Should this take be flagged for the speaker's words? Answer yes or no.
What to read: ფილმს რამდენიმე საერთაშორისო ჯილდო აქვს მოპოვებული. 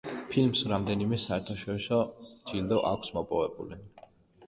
no